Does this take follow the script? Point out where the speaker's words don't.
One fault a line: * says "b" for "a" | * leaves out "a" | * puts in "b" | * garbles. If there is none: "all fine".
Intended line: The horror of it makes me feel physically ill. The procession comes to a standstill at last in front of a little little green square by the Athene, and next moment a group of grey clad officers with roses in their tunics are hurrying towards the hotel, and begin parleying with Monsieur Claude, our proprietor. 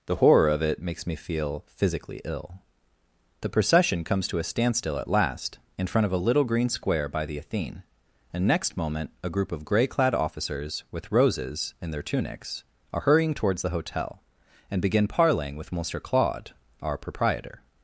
* leaves out "little"